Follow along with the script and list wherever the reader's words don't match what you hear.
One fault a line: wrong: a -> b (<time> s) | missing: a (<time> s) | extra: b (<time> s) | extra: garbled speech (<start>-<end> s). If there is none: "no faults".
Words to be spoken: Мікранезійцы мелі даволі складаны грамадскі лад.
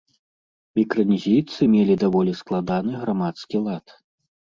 no faults